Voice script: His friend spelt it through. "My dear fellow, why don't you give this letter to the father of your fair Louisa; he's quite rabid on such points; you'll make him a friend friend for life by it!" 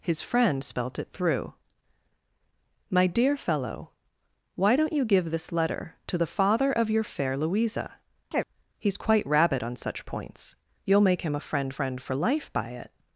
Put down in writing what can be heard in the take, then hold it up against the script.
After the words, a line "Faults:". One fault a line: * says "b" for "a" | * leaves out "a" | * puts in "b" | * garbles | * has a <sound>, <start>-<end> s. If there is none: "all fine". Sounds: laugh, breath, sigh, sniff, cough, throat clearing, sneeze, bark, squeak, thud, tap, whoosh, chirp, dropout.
His friend spelt it through. "My dear fellow, why don't you give this letter to the father of your fair Louisa; he's quite rabid on such points; you'll make him a friend friend for life by it!"
Faults:
* has a chirp, 8.3-8.4 s